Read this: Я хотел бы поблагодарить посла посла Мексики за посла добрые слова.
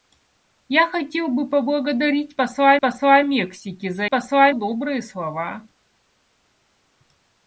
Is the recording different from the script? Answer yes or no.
no